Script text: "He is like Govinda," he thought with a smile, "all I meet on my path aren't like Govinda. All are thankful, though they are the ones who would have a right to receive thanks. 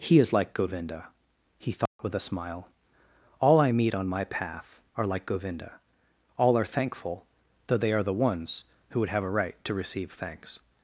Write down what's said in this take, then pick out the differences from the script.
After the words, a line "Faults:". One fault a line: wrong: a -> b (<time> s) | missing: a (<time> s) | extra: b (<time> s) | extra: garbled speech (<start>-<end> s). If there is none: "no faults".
"He is like Govinda," he thought with a smile, "all I meet on my path are like Govinda. All are thankful, though they are the ones who would have a right to receive thanks.
Faults:
wrong: aren't -> are (5.0 s)